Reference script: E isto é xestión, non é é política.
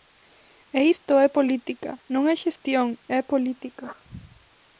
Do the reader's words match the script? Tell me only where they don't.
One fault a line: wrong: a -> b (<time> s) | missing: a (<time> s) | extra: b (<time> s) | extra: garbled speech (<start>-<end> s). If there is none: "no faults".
wrong: xestión -> política (1.4 s)
extra: xestión (2.4 s)